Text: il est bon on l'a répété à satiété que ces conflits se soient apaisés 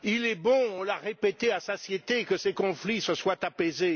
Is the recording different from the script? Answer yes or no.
no